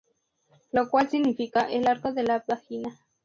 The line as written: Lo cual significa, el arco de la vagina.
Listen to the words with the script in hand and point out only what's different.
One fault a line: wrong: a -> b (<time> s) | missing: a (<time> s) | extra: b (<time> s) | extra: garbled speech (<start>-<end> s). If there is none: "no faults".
no faults